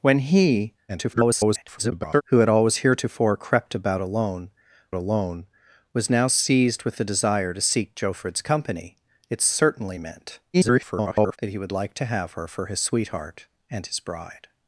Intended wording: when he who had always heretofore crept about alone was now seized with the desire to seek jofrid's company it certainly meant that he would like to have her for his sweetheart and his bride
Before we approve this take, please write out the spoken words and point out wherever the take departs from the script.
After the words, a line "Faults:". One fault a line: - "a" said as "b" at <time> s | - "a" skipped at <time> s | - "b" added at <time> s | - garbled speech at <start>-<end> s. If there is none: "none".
when he [garbled] who had always heretofore crept about alone alone was now seized with the desire to seek jofrid's company it certainly meant [garbled] that he would like to have her for his sweetheart and his bride
Faults:
- garbled speech at 0.9-2.2 s
- "alone" added at 4.9 s
- garbled speech at 10.5-11.4 s